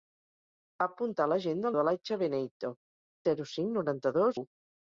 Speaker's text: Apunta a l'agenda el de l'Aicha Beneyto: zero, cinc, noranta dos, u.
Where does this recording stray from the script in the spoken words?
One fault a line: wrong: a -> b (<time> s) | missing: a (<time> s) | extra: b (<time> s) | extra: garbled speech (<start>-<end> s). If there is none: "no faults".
no faults